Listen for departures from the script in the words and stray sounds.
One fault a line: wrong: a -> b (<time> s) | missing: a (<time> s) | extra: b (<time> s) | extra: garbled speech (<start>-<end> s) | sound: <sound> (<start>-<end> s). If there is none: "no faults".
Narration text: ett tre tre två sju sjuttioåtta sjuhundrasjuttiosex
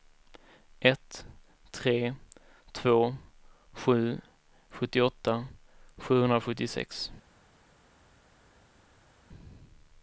missing: tre (2.1 s)